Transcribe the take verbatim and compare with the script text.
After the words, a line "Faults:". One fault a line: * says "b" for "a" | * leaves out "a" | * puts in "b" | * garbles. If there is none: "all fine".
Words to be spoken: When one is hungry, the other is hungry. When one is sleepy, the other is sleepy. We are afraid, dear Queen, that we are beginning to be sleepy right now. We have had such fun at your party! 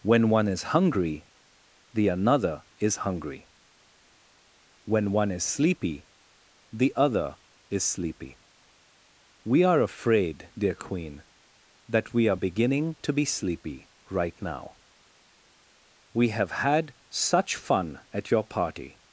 When one is hungry, the another is hungry. When one is sleepy, the other is sleepy. We are afraid, dear Queen, that we are beginning to be sleepy right now. We have had such fun at your party!
Faults:
* says "another" for "other"